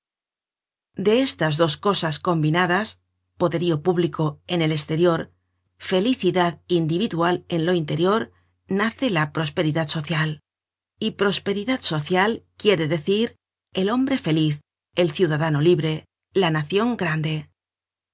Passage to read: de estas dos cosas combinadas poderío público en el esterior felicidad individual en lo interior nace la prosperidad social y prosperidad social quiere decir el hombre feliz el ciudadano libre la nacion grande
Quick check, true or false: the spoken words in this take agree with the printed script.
true